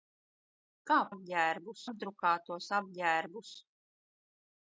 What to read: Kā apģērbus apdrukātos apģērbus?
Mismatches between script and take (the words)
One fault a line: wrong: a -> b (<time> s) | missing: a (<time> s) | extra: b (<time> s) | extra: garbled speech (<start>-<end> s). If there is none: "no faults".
no faults